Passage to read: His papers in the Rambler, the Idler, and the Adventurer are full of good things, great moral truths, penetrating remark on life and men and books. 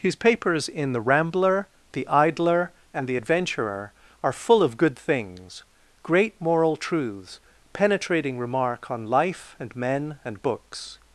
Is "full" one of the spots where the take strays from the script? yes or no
no